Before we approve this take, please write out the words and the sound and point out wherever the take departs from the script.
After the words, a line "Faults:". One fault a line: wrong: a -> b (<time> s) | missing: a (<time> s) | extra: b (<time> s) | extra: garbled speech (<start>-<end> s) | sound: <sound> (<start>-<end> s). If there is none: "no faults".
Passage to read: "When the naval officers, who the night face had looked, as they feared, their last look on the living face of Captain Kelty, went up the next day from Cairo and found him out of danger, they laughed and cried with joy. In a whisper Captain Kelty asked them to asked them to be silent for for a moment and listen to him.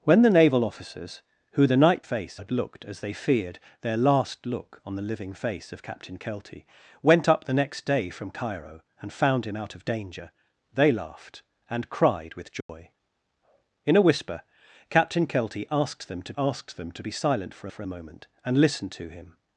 "When the naval officers, who the night face had looked, as they feared, their last look on the living face of Captain Kelty, went up the next day from Cairo and found him out of danger, they laughed and cried with joy. In a whisper Captain Kelty asked them to asked them to be silent for for a moment and listen to him.
Faults:
sound: dropout (12.6-12.7 s)